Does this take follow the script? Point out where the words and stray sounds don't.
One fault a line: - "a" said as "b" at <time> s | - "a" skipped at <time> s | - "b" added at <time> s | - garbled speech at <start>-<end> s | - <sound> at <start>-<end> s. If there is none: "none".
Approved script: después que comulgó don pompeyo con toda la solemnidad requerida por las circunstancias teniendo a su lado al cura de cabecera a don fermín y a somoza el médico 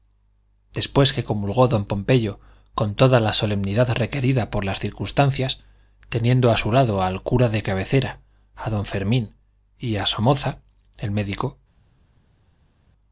none